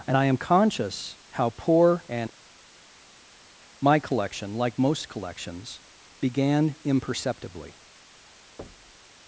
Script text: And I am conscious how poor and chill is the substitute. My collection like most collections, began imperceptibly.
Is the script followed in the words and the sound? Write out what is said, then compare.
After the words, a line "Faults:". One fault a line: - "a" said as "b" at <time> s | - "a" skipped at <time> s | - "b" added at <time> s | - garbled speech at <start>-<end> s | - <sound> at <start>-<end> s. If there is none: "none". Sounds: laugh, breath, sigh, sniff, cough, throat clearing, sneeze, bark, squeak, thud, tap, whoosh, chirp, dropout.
And I am conscious how poor and. My collection like most collections, began imperceptibly.
Faults:
- "chill is the substitute" skipped at 2.3 s
- thud at 8.6-9.1 s